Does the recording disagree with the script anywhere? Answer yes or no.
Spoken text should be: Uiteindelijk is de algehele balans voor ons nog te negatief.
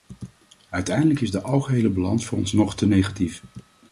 no